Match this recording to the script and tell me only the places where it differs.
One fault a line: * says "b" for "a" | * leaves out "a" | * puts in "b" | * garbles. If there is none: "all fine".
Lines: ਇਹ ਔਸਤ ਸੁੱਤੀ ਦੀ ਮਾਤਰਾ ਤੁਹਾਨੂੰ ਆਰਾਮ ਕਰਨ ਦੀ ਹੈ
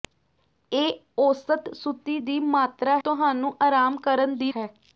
all fine